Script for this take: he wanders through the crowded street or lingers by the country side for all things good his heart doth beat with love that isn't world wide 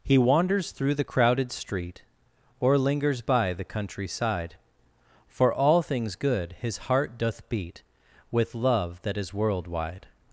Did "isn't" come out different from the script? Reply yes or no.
yes